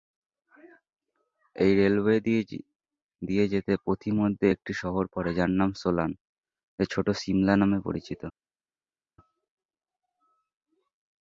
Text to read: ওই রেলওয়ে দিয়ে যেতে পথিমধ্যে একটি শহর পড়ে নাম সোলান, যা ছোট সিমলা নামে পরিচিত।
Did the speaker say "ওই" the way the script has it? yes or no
no